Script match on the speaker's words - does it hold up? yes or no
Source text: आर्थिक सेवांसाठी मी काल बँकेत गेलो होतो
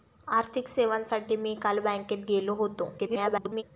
no